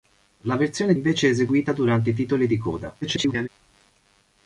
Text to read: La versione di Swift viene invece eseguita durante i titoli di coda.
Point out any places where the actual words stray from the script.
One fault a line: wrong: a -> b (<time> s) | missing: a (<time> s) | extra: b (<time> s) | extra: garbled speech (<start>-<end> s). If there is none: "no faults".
missing: di Swift viene (0.9 s)
extra: garbled speech (3.0-3.5 s)